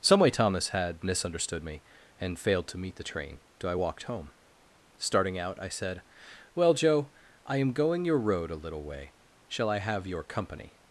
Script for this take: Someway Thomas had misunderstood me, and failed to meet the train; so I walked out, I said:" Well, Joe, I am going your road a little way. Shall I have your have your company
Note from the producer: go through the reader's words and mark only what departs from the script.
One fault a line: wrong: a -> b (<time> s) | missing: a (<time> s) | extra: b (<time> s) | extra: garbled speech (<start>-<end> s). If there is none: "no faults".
extra: home Starting (4.0 s)
missing: have your (10.2 s)